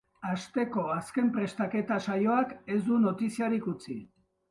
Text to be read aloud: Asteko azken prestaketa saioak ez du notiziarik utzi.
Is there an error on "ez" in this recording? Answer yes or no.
no